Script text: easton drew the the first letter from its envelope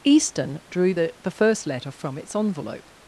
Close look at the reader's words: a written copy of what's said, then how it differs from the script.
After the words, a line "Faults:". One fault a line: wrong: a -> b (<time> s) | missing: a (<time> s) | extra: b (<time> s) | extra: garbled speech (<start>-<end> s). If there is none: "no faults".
easton drew the the first letter from its envelope
Faults:
no faults